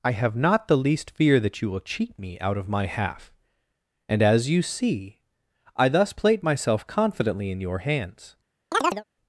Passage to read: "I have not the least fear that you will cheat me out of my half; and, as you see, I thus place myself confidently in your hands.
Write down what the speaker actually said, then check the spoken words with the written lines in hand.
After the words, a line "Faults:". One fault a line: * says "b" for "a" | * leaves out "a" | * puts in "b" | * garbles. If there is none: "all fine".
"I have not the least fear that you will cheat me out of my half; and, as you see, I thus plate myself confidently in your hands.
Faults:
* says "plate" for "place"